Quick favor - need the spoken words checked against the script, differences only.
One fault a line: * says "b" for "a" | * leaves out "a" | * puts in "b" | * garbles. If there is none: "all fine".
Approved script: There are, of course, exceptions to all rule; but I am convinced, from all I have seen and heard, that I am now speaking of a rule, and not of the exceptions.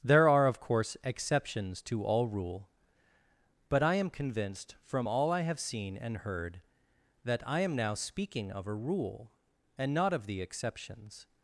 all fine